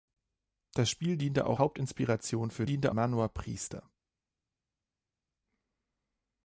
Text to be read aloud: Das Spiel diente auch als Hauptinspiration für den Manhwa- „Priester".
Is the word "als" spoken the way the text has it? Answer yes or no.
no